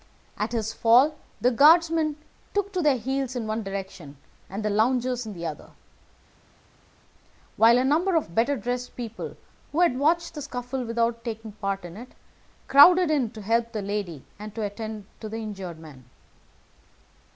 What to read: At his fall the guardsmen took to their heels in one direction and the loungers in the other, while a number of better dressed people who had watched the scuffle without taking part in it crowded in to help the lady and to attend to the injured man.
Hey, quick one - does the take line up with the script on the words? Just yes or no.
yes